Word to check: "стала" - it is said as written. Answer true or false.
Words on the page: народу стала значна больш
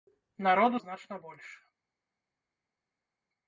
false